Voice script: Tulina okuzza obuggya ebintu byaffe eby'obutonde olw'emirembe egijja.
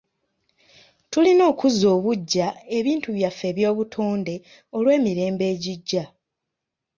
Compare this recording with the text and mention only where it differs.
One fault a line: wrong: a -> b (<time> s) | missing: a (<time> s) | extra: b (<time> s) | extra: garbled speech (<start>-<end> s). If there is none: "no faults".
no faults